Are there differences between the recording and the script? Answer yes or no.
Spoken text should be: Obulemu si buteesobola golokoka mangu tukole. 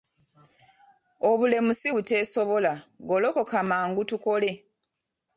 no